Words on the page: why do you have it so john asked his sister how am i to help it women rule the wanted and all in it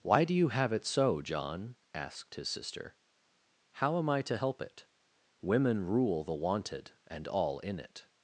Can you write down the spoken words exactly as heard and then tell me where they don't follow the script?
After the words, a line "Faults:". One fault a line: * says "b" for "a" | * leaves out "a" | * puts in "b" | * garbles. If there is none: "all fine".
why do you have it so john asked his sister how am i to help it women rule the wanted and all in it
Faults:
all fine